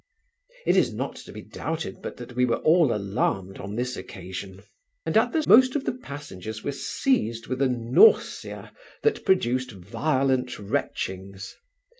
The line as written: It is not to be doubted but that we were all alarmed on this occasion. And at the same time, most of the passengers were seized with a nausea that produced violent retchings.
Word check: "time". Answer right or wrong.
wrong